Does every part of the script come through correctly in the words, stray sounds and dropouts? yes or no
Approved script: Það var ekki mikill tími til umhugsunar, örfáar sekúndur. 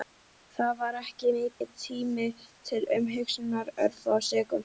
no